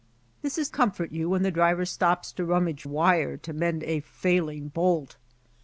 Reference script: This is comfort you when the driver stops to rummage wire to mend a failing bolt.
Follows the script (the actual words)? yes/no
yes